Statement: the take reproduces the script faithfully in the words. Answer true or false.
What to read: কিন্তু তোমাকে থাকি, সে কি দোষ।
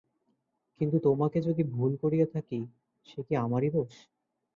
false